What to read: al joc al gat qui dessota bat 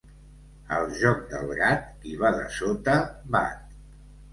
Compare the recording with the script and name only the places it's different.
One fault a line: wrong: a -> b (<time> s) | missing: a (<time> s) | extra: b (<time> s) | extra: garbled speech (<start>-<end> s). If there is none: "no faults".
wrong: al -> del (1.4 s)
extra: va (2.3 s)